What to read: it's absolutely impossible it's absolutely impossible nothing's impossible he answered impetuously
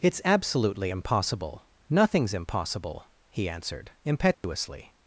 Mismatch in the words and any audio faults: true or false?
true